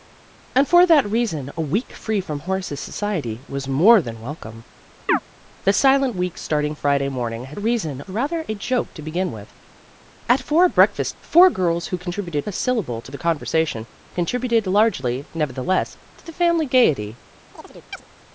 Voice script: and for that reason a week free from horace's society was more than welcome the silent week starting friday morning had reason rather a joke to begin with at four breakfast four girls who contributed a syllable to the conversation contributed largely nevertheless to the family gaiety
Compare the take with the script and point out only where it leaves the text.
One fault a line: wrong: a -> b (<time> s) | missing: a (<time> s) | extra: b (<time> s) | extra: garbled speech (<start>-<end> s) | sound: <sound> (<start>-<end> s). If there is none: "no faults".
sound: chirp (5.1-5.2 s)
sound: chirp (17.5-18.1 s)